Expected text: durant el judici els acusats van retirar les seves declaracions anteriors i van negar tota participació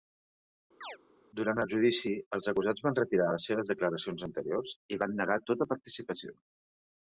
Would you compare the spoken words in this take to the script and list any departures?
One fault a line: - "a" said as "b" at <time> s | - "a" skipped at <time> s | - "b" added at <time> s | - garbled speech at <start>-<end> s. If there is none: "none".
none